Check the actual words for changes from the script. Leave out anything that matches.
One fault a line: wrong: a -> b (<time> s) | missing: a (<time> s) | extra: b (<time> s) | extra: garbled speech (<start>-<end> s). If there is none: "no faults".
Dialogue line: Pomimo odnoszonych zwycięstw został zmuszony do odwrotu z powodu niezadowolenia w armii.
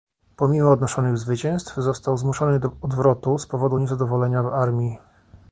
no faults